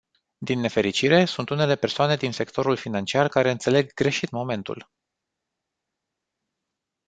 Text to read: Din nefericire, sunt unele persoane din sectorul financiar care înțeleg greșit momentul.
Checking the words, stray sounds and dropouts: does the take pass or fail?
pass